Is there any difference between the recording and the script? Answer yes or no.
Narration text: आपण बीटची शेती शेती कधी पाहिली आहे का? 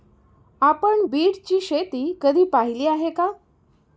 yes